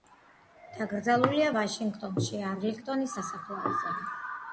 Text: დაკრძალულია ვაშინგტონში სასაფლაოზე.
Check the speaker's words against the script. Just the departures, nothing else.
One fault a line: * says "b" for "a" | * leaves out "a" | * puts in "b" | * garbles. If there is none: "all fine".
* puts in "არლინგტონის"